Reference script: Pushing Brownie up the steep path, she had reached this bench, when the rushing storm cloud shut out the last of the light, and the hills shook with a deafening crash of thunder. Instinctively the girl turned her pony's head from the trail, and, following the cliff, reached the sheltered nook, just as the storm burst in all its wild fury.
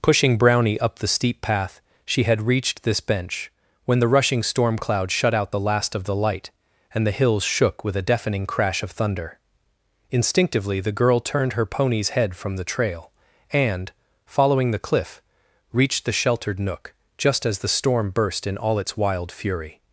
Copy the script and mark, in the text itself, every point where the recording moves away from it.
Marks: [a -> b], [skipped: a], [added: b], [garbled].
Pushing Brownie up the steep path, she had reached this bench, when the rushing storm cloud shut out the last of the light, and the hills shook with a deafening crash of thunder. Instinctively the girl turned her pony's head from the trail, and, following the cliff, reached the sheltered nook, just as the storm burst in all its wild fury.